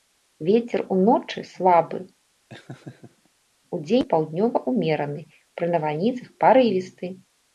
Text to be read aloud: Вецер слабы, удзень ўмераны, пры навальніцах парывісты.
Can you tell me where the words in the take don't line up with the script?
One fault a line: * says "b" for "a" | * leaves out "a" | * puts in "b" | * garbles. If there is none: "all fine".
* puts in "уночы"
* puts in "паўднёвы"